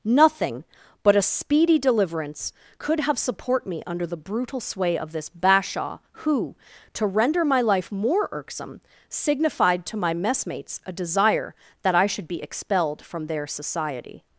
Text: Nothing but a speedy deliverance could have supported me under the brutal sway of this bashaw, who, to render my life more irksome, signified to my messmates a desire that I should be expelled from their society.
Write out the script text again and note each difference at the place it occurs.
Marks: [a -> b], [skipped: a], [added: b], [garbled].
Nothing but a speedy deliverance could have [supported -> support] me under the brutal sway of this bashaw, who, to render my life more irksome, signified to my messmates a desire that I should be expelled from their society.